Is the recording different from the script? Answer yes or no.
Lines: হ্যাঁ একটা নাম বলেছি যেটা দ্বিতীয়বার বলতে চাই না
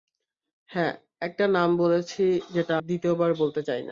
no